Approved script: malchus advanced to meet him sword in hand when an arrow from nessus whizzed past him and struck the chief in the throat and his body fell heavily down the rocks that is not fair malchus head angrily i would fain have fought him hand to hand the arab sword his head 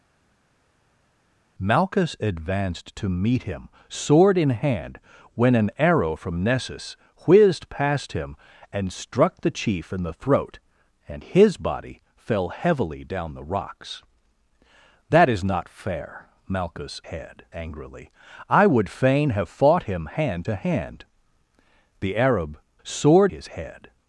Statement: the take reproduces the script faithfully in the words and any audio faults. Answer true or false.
true